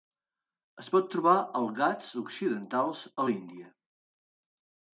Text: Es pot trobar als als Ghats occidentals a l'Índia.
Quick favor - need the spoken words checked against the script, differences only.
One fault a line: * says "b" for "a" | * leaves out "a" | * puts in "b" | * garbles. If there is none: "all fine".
* leaves out "als"